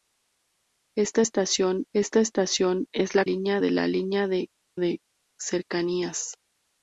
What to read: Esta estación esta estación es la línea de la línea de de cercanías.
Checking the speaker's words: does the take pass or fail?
pass